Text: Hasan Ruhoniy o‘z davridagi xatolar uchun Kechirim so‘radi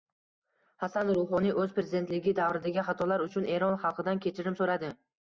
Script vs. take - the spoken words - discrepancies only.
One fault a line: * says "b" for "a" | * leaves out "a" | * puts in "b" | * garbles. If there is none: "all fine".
* puts in "prezidentligi"
* puts in "Eron xalqidan"